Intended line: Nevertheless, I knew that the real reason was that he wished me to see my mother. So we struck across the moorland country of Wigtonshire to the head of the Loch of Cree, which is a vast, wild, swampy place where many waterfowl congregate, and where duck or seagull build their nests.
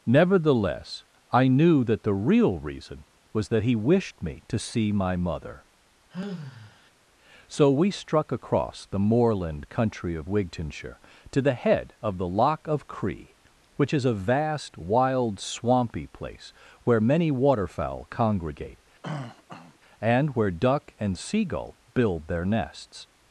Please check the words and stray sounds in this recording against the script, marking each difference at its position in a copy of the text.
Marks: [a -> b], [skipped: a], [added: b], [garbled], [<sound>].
Nevertheless, I knew that the real reason was that he wished me to see my mother. [sigh] So we struck across the moorland country of Wigtonshire to the head of the Loch of Cree, which is a vast, wild, swampy place where many waterfowl congregate, [throat clearing] and where duck [or -> and] seagull build their nests.